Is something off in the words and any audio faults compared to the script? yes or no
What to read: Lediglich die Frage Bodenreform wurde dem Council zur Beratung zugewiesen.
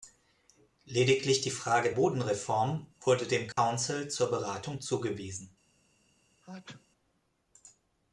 yes